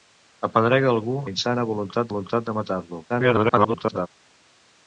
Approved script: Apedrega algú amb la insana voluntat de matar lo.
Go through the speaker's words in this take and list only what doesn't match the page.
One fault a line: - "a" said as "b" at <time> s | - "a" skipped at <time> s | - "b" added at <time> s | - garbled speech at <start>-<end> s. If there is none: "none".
- "amb" skipped at 1.2 s
- "voluntat" added at 2.1 s
- garbled speech at 3.1-4.1 s